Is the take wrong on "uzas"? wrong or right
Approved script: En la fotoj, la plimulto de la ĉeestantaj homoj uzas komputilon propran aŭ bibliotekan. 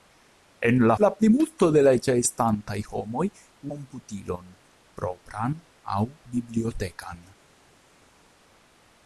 wrong